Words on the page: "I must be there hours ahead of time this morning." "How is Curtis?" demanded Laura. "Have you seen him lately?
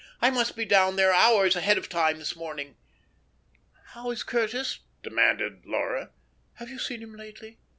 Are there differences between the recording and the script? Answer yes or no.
yes